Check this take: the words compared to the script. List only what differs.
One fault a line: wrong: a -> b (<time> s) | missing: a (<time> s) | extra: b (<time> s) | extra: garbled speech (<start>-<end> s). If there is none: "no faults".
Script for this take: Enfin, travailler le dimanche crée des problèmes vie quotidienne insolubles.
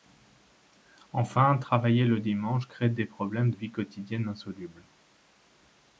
no faults